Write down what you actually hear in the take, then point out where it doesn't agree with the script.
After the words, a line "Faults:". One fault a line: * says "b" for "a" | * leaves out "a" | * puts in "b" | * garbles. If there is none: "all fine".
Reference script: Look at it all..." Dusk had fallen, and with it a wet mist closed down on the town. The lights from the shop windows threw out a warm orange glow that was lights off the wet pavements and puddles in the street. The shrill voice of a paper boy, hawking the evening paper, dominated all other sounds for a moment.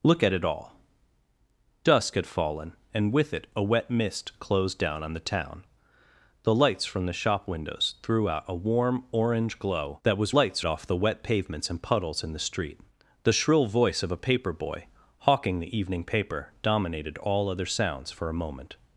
Look at it all..." Dusk had fallen, and with it a wet mist closed down on the town. The lights from the shop windows threw out a warm orange glow that was lights off the wet pavements and puddles in the street. The shrill voice of a paper boy, hawking the evening paper, dominated all other sounds for a moment.
Faults:
all fine